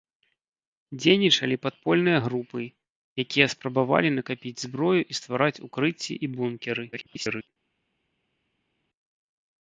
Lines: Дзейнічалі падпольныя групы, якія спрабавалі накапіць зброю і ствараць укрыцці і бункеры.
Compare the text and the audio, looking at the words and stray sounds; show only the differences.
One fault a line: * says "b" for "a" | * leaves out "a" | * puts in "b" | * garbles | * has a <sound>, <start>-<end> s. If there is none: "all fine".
* garbles